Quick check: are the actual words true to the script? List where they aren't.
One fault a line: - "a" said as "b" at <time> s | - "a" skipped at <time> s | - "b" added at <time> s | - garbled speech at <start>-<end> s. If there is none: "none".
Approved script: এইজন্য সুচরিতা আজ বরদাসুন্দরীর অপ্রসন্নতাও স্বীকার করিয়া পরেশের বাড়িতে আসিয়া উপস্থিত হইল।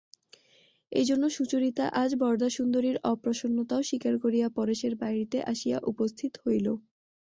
none